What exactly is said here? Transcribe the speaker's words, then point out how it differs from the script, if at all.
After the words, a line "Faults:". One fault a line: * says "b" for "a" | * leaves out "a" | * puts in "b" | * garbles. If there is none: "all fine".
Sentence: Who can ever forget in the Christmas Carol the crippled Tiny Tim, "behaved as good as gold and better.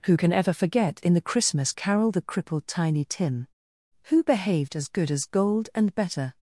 Who can ever forget in the Christmas Carol the crippled Tiny Tim, "who behaved as good as gold and better.
Faults:
* puts in "who"